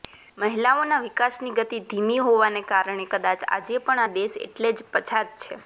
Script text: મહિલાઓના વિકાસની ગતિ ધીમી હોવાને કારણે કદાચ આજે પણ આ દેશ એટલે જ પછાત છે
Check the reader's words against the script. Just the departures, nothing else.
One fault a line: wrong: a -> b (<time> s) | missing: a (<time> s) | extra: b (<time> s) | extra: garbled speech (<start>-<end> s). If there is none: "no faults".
no faults